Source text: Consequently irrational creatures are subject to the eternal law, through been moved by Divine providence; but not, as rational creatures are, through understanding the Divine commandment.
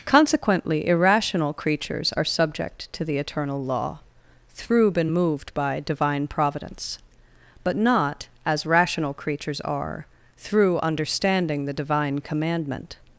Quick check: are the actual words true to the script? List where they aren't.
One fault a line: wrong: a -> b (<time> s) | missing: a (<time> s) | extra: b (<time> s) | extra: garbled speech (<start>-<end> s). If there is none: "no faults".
no faults